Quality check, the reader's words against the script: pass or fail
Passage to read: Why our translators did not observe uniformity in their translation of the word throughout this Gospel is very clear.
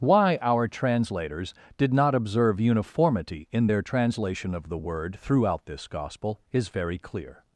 pass